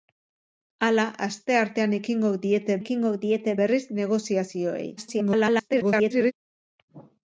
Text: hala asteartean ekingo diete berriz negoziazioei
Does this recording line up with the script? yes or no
no